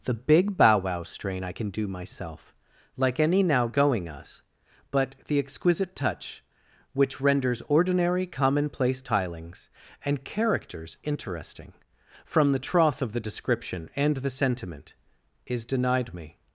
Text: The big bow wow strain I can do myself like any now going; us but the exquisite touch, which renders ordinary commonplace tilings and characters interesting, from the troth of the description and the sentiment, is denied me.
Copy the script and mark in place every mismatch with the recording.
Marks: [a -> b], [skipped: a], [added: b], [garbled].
The big bow wow strain I can do myself like any now going; us but the exquisite touch, which renders ordinary commonplace tilings and characters interesting, from the troth of the description and the sentiment, is denied me.